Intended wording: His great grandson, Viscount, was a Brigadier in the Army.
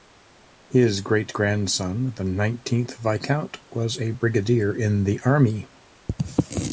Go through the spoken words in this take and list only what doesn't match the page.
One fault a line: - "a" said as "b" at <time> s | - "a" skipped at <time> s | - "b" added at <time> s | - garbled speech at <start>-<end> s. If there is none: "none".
- "the nineteenth" added at 2.1 s